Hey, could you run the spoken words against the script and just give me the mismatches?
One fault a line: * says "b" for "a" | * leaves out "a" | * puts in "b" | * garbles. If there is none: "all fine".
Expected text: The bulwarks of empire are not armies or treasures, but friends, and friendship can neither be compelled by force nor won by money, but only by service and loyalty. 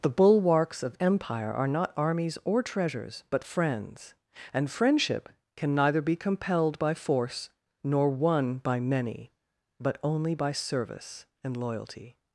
* says "many" for "money"